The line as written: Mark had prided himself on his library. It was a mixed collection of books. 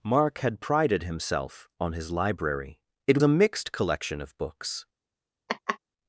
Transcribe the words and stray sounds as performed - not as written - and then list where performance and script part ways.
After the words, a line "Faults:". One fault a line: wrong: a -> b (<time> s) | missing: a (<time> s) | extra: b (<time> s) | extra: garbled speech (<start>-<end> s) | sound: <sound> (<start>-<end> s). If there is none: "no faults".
Mark had prided himself on his library. It a mixed collection of books.
Faults:
missing: was (3.2 s)
sound: laugh (5.5-5.8 s)